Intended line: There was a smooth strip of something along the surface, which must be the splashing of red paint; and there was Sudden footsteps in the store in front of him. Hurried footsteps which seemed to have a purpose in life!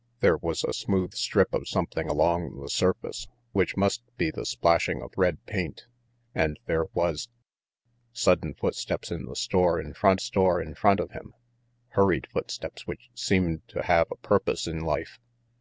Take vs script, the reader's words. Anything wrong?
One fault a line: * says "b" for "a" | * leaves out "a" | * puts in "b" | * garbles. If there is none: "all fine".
* puts in "store in front"